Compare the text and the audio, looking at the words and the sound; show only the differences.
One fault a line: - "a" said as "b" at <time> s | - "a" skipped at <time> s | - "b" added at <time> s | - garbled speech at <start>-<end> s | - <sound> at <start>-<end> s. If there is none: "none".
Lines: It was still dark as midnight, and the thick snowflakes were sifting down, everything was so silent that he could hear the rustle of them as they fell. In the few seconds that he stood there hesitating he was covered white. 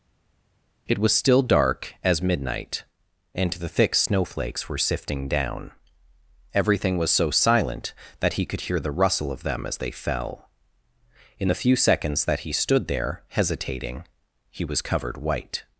none